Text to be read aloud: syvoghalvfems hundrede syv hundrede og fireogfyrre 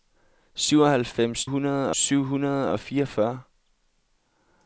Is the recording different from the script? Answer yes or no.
no